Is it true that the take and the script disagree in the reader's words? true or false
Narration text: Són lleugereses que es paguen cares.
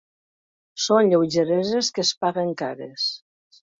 false